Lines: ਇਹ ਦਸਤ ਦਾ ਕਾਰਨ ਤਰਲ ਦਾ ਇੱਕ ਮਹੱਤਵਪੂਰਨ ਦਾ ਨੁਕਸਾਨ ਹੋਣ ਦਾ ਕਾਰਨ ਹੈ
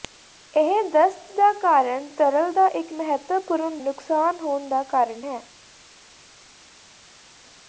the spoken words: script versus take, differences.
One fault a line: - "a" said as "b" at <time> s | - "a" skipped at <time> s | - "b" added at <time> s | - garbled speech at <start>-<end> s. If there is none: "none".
- "ਦਾ" skipped at 3.8 s